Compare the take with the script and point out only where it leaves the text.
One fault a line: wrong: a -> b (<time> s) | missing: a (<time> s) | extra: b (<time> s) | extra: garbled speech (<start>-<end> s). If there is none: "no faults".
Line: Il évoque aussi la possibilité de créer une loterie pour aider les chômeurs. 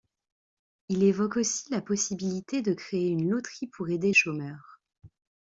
missing: les (4.1 s)